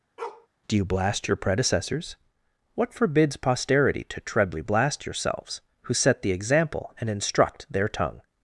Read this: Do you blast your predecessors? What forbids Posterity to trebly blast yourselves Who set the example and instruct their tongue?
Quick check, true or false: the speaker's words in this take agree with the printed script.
true